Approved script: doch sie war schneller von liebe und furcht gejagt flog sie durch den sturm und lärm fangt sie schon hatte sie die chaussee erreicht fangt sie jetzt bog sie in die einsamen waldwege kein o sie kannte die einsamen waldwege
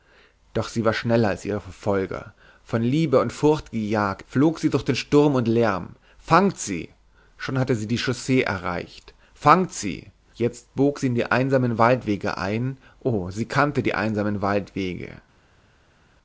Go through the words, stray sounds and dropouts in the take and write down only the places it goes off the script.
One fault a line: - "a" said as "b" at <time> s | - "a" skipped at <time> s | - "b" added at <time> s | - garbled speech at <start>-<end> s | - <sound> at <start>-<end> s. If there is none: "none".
- "als ihre verfolger" added at 1.3 s
- "kein" said as "ein" at 12.4 s